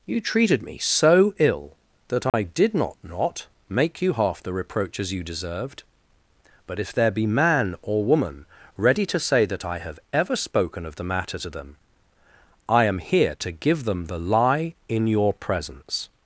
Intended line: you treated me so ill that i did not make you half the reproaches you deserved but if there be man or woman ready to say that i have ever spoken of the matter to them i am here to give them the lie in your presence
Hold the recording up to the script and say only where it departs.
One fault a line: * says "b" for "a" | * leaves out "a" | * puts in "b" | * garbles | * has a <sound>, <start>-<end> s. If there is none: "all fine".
* has a dropout, 2.3-2.3 s
* puts in "not"